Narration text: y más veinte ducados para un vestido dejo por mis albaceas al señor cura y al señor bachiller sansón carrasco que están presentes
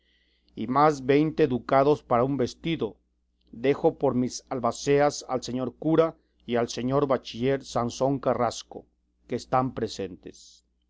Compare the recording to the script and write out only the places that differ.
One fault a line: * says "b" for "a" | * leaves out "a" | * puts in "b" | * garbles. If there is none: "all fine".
all fine